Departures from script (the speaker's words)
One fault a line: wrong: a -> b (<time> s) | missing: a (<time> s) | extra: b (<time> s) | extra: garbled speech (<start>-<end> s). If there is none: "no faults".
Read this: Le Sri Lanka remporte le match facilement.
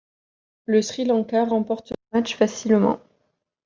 no faults